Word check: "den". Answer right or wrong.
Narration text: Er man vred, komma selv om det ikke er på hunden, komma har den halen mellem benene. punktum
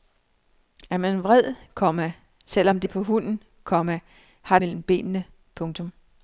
wrong